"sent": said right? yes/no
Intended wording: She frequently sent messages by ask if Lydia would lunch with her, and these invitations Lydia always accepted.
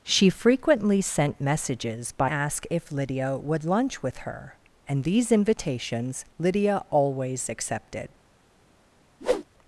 yes